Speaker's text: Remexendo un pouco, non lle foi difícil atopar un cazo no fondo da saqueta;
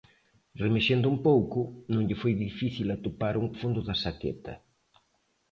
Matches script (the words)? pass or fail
fail